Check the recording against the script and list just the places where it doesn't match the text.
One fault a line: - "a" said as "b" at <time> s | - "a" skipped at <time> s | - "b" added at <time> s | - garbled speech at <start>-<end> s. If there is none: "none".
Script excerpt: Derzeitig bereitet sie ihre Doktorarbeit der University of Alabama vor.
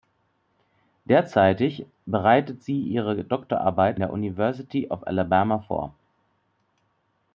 none